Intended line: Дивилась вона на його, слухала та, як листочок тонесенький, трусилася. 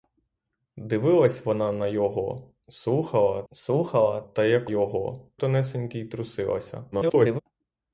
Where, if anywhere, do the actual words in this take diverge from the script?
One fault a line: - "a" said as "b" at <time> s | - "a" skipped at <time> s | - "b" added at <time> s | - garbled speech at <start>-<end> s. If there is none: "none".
- "слухала" added at 3.5 s
- "листочок" said as "його" at 4.6 s
- garbled speech at 6.9-7.4 s